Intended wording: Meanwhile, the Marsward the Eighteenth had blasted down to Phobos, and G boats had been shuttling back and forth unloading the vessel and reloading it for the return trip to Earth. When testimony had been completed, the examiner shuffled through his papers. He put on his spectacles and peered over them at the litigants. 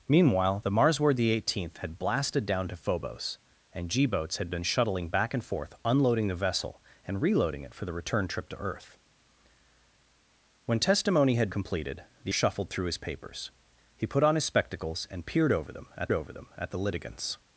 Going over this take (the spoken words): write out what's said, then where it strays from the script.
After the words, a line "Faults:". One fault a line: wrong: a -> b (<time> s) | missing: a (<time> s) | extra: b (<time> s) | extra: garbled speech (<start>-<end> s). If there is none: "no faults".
Meanwhile, the Marsward the Eighteenth had blasted down to Phobos, and G boats had been shuttling back and forth unloading the vessel and reloading it for the return trip to Earth. When testimony had completed, the shuffled through his papers. He put on his spectacles and peered over them at over them at the litigants.
Faults:
missing: been (11.5 s)
missing: examiner (12.3 s)
extra: over them at (16.1 s)